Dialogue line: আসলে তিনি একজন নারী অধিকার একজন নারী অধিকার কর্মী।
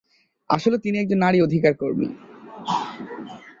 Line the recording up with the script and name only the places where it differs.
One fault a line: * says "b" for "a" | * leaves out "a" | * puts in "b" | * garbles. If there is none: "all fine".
* leaves out "একজন নারী অধিকার"